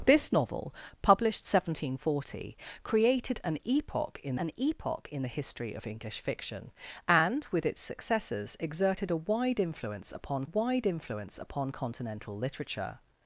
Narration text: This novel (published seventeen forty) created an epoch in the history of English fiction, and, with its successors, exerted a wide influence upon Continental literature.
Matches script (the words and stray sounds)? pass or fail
fail